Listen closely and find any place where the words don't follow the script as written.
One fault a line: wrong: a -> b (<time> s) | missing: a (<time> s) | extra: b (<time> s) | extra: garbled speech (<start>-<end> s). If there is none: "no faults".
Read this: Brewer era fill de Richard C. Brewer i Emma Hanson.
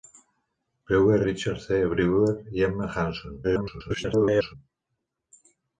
missing: era fill de (1.2 s)
extra: garbled speech (3.4-4.5 s)